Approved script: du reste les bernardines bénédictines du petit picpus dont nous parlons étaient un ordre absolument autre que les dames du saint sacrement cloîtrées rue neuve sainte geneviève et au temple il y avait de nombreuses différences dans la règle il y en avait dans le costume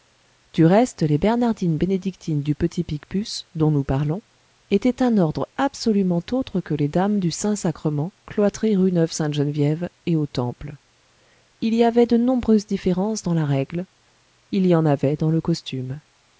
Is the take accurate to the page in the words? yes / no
yes